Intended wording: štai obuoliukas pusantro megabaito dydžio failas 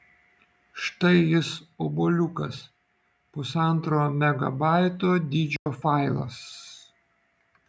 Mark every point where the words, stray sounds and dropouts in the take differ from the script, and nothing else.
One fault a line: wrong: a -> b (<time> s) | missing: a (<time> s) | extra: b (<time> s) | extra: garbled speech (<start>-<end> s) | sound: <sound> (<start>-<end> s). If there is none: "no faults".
extra: jis (1.3 s)
sound: dropout (5.6-5.7 s)